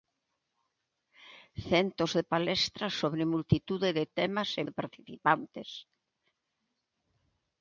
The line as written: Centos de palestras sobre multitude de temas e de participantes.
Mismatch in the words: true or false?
false